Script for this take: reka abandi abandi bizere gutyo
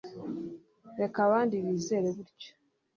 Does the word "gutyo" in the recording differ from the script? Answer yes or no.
no